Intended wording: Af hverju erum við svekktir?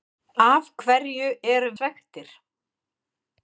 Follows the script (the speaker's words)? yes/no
no